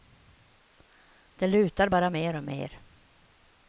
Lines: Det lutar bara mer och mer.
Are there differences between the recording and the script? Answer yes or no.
no